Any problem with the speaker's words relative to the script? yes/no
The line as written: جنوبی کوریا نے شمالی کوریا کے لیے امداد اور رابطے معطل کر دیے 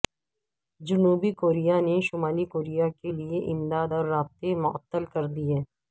no